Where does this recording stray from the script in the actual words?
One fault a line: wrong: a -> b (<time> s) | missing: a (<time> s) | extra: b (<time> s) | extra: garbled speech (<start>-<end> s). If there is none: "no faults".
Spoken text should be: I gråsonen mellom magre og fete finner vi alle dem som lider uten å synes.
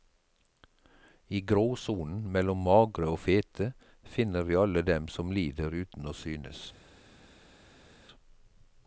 no faults